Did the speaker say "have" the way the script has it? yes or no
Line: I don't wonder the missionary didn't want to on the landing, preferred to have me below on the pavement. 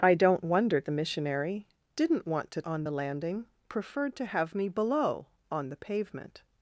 yes